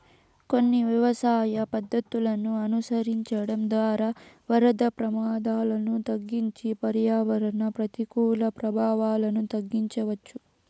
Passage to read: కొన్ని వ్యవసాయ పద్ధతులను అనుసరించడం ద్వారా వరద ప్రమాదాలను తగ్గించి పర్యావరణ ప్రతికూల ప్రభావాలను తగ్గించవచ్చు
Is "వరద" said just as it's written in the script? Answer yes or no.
yes